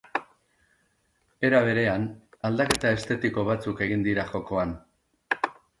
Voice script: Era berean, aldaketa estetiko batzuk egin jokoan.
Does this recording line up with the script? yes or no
no